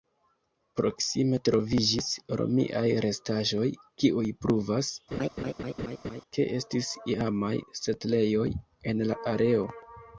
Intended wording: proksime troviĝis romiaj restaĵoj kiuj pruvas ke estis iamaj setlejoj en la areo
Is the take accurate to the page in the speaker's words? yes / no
yes